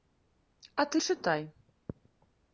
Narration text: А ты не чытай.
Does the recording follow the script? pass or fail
fail